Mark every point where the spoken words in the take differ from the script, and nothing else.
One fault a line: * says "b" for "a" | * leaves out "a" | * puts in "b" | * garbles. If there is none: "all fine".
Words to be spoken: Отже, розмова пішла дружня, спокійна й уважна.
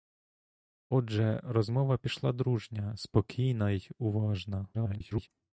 * garbles